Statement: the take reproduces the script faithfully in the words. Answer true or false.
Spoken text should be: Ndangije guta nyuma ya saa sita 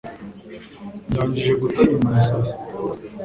true